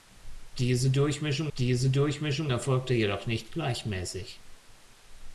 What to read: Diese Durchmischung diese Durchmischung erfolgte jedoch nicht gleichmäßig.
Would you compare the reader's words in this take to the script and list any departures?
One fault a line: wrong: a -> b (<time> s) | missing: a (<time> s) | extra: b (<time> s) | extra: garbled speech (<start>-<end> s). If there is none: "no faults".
no faults